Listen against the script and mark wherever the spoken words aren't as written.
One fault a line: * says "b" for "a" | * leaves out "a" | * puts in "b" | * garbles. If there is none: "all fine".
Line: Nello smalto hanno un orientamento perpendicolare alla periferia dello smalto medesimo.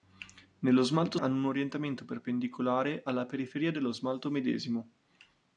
all fine